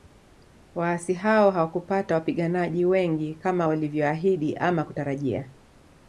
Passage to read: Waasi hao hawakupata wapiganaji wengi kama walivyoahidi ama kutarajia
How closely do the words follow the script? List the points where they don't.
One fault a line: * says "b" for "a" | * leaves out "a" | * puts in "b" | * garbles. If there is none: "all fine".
all fine